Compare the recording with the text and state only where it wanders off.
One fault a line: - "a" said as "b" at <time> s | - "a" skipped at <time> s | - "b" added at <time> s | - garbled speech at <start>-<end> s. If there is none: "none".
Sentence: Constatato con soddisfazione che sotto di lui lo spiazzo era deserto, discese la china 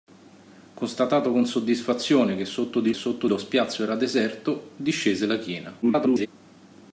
- "lui" said as "sotto" at 2.9 s
- garbled speech at 5.8-6.3 s